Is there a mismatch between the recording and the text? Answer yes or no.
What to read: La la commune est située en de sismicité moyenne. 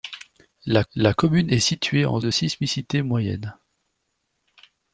no